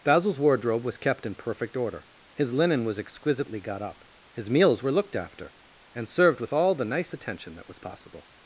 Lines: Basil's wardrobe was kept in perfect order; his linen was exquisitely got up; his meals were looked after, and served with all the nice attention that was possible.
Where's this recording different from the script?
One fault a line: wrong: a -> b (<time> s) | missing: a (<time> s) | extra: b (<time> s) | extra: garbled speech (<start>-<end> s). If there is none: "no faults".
no faults